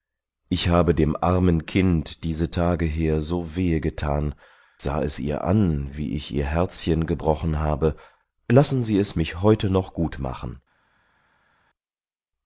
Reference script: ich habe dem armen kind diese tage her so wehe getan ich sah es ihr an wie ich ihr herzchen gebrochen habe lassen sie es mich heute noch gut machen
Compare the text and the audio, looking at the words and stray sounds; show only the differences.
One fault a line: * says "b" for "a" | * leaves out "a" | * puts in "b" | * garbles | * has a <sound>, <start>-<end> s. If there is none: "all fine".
* leaves out "ich"